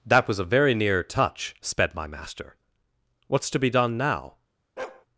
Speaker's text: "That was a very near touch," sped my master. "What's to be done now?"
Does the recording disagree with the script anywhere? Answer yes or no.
no